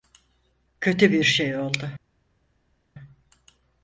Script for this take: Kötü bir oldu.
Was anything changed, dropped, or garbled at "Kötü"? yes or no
no